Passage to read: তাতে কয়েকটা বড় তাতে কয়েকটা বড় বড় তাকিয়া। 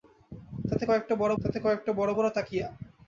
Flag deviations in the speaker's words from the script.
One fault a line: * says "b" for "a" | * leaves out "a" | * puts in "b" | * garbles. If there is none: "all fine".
all fine